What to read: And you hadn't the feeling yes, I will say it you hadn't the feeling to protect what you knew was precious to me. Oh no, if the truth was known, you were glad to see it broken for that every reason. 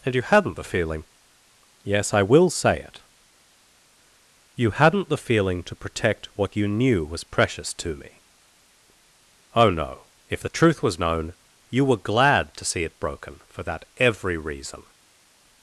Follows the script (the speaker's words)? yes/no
yes